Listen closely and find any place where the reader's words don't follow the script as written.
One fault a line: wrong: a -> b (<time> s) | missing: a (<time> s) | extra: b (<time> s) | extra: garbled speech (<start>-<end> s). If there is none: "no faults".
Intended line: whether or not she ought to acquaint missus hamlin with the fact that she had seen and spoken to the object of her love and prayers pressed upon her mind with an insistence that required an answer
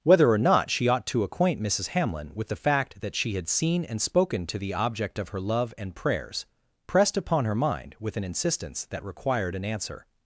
no faults